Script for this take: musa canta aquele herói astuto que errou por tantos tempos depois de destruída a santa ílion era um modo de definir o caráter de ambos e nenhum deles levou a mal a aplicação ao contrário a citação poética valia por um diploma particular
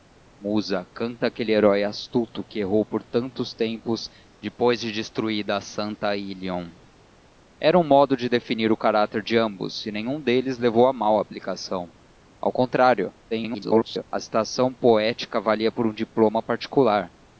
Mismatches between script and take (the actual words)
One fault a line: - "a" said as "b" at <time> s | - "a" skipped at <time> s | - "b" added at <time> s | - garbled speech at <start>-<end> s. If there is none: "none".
- garbled speech at 13.3-14.0 s